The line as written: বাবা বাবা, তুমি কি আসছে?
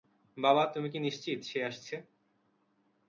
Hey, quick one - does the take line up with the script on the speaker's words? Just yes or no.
no